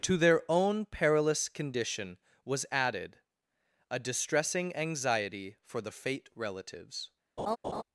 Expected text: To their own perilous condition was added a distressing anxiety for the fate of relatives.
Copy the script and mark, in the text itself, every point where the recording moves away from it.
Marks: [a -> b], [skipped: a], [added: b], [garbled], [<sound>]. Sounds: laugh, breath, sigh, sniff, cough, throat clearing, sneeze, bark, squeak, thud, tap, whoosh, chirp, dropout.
To their own perilous condition was added a distressing anxiety for the fate [skipped: of] relatives. [laugh]